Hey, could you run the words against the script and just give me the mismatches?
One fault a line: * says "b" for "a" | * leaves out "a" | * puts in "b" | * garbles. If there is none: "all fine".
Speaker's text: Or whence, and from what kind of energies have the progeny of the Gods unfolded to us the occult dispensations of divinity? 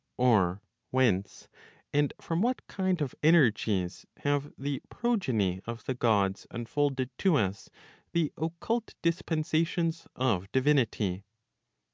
all fine